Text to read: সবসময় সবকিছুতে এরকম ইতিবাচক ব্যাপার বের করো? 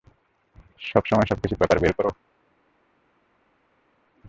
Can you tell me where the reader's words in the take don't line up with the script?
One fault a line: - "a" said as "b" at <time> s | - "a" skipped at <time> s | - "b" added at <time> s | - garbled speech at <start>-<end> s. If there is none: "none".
- "এরকম ইতিবাচক" skipped at 1.6 s